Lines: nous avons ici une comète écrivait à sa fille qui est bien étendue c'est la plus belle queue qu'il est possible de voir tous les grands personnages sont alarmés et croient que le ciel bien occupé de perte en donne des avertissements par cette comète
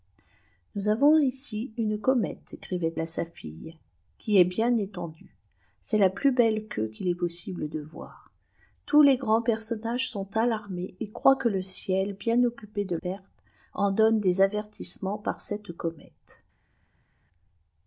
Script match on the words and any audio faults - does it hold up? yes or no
yes